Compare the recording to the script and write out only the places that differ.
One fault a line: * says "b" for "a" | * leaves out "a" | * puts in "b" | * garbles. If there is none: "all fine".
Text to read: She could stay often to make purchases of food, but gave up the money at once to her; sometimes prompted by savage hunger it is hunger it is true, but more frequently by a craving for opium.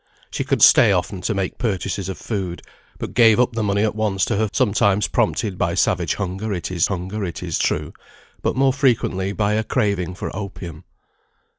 all fine